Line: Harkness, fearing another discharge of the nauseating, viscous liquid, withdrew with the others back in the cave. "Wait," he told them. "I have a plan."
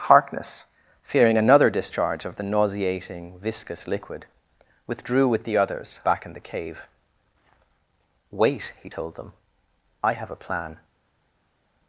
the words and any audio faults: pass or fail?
pass